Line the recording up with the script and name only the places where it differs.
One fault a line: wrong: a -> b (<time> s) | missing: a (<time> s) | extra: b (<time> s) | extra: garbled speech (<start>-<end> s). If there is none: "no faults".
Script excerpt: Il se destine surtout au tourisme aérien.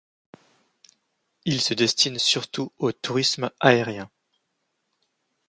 no faults